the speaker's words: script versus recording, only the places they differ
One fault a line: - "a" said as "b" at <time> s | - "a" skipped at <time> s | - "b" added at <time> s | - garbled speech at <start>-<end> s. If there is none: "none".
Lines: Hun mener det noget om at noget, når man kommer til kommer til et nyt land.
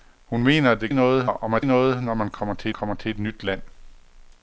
none